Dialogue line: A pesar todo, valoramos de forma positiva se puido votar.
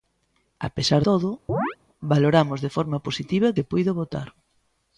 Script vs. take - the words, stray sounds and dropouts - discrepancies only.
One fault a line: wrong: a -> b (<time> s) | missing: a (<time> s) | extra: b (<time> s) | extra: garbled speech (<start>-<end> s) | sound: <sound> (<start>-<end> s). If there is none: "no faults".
sound: chirp (1.5-1.8 s)